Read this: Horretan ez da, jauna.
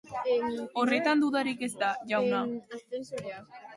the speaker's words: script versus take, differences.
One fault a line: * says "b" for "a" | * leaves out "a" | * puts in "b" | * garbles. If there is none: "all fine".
* puts in "dudarik"